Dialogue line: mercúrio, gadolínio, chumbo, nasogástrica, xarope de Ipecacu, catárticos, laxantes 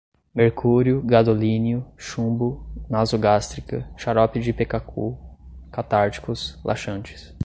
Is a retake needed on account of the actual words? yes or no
no